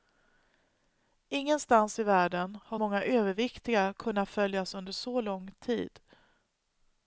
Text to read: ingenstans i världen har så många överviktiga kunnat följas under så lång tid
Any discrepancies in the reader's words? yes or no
yes